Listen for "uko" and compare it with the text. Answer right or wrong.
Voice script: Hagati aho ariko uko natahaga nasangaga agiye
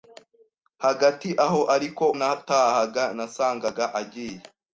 wrong